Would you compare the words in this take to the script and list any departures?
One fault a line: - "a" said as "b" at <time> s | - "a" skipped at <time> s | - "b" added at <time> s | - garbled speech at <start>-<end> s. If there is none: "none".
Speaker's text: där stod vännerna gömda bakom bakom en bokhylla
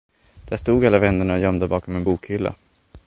- "alla" added at 0.8 s
- "bakom" skipped at 1.9 s